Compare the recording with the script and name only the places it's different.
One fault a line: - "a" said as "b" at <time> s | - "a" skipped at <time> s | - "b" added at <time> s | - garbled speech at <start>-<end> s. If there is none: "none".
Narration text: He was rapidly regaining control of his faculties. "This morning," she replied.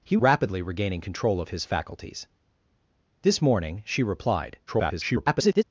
- "was" skipped at 0.2 s
- garbled speech at 4.7-5.6 s